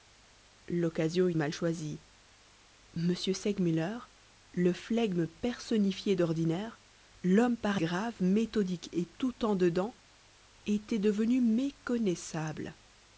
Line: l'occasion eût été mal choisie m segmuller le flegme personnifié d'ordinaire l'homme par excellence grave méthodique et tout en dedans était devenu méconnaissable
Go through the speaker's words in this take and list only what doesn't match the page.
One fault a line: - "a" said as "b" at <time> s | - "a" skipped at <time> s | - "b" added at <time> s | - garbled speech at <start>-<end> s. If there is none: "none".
- "été" skipped at 1.3 s
- "excellence" skipped at 7.8 s